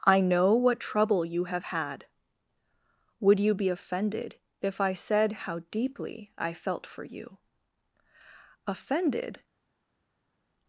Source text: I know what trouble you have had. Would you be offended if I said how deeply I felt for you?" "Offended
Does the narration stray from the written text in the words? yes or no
no